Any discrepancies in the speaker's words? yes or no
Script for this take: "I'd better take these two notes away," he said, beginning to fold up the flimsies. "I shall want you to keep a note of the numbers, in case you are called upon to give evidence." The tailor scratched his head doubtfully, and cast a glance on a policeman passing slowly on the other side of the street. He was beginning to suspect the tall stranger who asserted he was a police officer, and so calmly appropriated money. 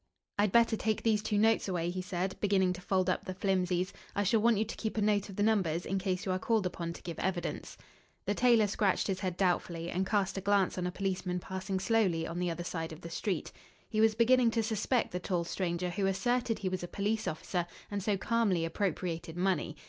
no